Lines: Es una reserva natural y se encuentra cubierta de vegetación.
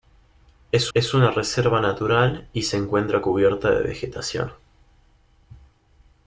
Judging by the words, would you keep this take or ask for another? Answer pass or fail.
fail